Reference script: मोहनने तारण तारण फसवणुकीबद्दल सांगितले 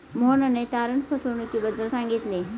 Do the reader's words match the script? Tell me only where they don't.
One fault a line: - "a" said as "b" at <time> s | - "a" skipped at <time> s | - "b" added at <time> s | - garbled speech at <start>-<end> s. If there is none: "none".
- "तारण" skipped at 1.0 s